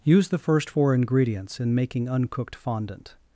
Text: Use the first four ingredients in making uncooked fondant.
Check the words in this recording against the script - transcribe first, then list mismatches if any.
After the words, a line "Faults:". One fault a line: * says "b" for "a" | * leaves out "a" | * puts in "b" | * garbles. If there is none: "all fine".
Use the first four ingredients in making uncooked fondant.
Faults:
all fine